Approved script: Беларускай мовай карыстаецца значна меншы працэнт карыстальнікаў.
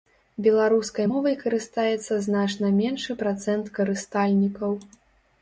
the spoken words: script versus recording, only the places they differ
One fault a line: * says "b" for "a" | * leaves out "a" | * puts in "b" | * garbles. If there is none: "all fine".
all fine